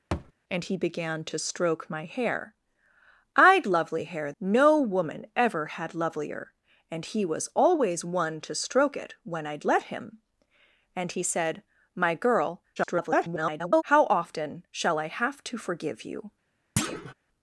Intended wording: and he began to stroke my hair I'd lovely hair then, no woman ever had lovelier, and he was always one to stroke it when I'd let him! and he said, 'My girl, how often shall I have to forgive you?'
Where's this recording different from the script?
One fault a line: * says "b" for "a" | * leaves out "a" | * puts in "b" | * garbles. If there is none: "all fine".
* leaves out "then"
* garbles